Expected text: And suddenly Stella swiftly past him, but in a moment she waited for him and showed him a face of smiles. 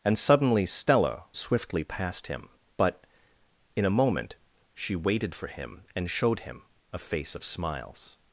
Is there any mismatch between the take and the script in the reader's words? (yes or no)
no